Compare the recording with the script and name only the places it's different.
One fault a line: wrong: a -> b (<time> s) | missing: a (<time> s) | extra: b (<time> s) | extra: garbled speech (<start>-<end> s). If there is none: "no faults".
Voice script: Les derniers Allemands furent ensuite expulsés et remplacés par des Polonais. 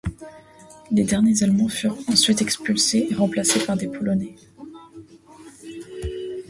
no faults